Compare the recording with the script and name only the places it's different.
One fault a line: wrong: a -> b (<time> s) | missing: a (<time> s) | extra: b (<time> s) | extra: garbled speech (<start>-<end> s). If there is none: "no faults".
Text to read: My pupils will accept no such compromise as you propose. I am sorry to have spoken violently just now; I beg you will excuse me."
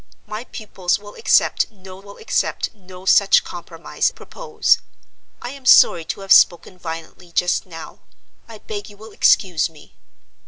extra: will accept no (2.0 s)
missing: as you (4.1 s)